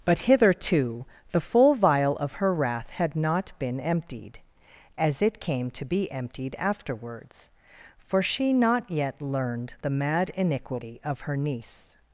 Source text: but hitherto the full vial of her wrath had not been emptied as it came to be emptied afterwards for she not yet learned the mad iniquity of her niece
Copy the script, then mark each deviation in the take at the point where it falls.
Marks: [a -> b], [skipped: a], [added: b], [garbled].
but hitherto the full vial of her wrath had not been emptied as it came to be emptied afterwards for she not yet learned the mad iniquity of her niece